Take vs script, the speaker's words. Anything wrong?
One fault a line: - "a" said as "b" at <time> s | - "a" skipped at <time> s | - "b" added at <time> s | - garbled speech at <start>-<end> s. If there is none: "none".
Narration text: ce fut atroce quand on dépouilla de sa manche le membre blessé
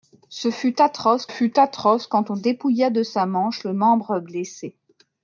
- "fut atroce" added at 1.2 s